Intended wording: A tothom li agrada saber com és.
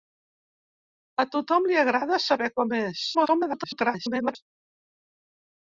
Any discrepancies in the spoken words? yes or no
yes